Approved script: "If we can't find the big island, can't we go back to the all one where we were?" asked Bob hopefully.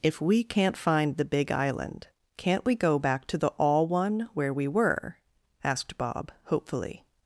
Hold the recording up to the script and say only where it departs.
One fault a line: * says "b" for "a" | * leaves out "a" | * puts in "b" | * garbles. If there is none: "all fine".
all fine